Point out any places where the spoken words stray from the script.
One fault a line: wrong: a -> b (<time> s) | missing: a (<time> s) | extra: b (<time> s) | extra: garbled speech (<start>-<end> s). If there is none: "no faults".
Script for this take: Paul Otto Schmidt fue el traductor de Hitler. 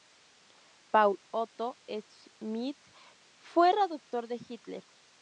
missing: el (3.7 s)